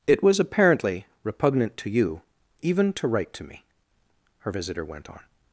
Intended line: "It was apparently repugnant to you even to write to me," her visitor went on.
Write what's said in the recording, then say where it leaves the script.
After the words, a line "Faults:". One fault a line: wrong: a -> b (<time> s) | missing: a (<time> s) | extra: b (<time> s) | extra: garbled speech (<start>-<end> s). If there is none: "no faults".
"It was apparently repugnant to you even to write to me," her visitor went on.
Faults:
no faults